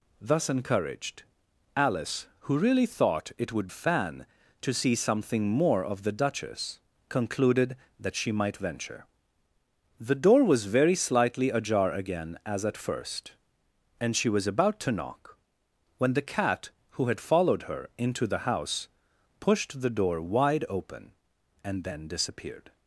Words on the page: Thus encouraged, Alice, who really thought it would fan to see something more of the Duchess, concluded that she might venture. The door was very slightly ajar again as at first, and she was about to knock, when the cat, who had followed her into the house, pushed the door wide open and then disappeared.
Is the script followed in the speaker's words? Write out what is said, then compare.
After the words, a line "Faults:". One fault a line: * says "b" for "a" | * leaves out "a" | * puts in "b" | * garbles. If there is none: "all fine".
Thus encouraged, Alice, who really thought it would fan to see something more of the Duchess, concluded that she might venture. The door was very slightly ajar again as at first, and she was about to knock, when the cat, who had followed her into the house, pushed the door wide open and then disappeared.
Faults:
all fine